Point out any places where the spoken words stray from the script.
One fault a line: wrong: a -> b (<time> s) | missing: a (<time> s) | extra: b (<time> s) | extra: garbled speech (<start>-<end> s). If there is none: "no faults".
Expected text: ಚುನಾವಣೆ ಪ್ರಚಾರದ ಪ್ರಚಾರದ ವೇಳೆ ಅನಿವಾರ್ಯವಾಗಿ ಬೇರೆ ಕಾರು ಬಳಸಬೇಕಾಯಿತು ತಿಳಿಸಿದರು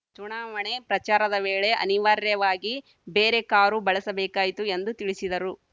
missing: ಪ್ರಚಾರದ (1.4 s)
extra: ಎಂದು (4.8 s)